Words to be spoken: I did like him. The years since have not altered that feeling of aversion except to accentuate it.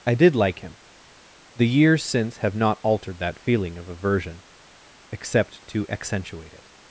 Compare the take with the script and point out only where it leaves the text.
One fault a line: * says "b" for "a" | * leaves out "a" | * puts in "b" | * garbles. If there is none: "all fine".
all fine